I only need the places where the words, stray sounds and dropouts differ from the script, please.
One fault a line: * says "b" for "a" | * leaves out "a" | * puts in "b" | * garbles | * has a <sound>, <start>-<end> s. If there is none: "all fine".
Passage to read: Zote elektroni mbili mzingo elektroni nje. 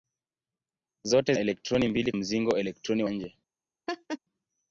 * has a laugh, 3.9-4.2 s